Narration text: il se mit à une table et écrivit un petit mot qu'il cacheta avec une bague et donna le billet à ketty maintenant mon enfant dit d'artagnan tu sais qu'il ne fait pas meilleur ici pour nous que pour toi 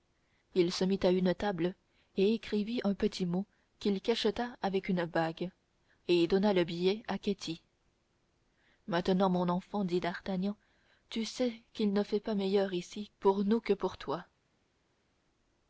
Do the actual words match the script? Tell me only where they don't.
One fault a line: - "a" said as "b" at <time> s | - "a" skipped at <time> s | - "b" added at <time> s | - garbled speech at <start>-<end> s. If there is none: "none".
none